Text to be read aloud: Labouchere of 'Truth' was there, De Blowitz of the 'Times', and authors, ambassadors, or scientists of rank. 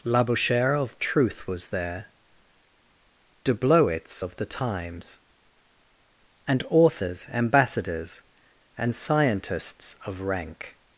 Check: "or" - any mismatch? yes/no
yes